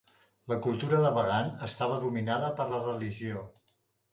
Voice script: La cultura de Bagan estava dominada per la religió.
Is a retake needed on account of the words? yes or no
no